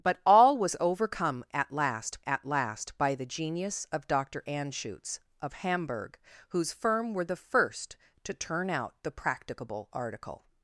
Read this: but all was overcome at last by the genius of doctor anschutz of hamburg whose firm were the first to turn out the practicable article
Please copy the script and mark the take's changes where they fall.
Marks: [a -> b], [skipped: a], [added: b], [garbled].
but all was overcome at last [added: at last] by the genius of doctor anschutz of hamburg whose firm were the first to turn out the practicable article